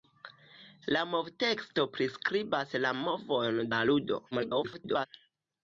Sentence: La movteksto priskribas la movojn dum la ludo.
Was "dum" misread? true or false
true